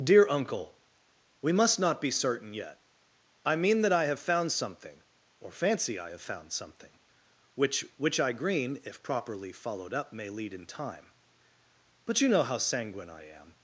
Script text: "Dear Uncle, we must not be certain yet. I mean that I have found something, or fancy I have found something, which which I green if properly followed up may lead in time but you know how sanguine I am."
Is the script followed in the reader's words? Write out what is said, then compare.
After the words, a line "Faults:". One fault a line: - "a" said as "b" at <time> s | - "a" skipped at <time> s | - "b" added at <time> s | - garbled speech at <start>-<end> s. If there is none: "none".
"Dear Uncle, we must not be certain yet. I mean that I have found something, or fancy I have found something, which which I green if properly followed up may lead in time but you know how sanguine I am."
Faults:
none